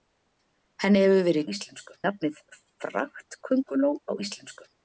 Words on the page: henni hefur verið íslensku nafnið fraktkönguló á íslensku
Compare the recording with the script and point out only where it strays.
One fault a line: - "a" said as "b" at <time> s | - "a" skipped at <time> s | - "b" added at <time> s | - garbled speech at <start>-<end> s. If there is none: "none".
none